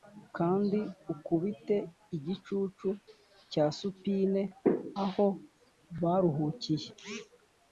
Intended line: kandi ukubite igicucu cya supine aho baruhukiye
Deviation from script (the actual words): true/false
false